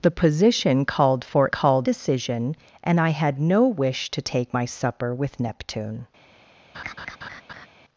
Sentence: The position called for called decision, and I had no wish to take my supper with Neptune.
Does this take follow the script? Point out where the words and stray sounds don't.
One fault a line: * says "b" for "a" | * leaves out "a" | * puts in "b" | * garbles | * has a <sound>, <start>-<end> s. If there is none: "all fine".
* has a laugh, 6.7-7.7 s